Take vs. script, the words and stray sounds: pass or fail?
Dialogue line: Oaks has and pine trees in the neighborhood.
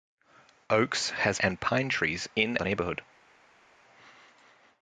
pass